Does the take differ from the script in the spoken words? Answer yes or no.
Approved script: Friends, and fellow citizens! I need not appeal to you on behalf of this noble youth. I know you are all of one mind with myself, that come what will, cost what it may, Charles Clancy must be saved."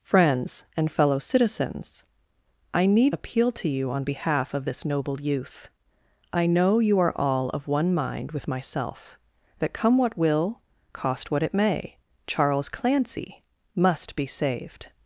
yes